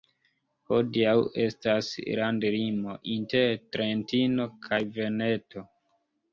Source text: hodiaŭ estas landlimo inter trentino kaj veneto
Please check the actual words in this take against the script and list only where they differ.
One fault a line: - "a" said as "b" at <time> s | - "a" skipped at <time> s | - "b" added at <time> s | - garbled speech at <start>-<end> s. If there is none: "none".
none